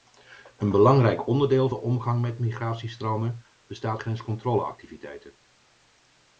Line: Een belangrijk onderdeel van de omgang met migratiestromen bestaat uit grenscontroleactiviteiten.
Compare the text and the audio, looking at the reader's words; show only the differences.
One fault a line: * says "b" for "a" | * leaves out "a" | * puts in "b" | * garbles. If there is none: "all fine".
* leaves out "van"
* leaves out "uit"